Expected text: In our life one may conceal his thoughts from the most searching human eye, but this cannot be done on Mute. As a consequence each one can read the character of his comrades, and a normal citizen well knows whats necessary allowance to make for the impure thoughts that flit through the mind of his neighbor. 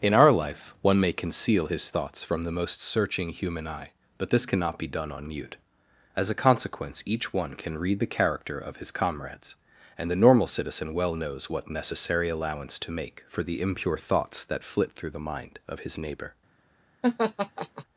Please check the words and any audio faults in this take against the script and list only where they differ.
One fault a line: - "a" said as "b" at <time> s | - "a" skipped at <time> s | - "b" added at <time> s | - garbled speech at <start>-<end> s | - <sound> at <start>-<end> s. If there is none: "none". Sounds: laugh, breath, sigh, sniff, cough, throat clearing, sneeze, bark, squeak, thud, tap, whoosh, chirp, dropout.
- "a" said as "the" at 10.1 s
- "whats" said as "what" at 11.5 s
- laugh at 17.0-17.8 s